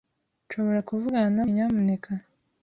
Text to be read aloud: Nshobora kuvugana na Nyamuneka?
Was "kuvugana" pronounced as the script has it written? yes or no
yes